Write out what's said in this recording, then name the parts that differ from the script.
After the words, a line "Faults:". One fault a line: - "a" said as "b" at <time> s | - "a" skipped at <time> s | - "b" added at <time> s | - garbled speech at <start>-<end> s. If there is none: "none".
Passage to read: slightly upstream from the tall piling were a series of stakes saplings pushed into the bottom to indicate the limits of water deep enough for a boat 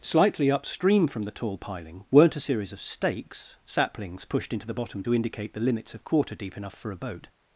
slightly upstream from the tall piling weren't a series of stakes saplings pushed into the bottom to indicate the limits of quarter deep enough for a boat
Faults:
- "were" said as "weren't" at 2.1 s
- "water" said as "quarter" at 6.0 s